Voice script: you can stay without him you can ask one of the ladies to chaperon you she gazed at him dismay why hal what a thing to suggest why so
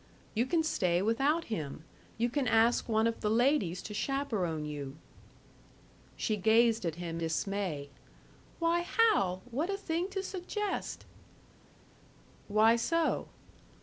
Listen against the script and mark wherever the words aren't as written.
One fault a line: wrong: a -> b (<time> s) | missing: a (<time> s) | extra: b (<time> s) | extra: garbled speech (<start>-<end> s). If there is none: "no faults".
no faults